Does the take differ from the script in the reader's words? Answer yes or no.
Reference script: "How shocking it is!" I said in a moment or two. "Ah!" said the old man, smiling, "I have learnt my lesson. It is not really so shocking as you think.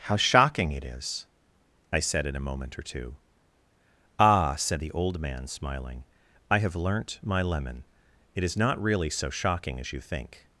yes